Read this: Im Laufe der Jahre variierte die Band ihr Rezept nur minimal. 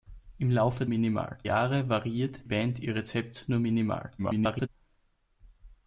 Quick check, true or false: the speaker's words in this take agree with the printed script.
false